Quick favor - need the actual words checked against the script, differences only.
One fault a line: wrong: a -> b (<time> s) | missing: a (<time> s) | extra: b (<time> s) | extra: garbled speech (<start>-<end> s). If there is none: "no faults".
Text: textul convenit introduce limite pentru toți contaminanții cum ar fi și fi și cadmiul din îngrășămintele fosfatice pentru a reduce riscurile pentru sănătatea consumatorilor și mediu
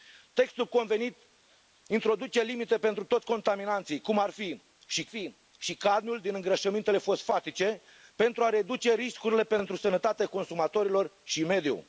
no faults